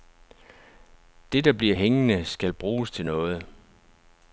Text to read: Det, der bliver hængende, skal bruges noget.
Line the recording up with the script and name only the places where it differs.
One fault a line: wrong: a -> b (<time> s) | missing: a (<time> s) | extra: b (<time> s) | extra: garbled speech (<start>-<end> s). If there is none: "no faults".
extra: til (2.9 s)